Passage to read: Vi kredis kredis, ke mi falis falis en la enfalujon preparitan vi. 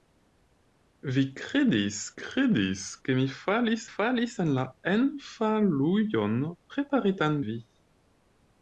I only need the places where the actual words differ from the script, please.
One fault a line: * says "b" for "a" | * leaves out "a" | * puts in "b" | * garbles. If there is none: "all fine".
all fine